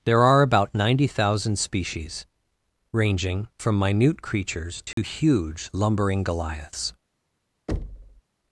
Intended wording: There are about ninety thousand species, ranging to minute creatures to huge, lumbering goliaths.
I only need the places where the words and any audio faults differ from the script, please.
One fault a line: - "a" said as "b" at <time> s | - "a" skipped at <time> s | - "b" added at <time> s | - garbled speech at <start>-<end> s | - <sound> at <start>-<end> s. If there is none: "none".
- "to" said as "from" at 3.6 s
- dropout at 4.9-5.0 s
- thud at 7.7-8.2 s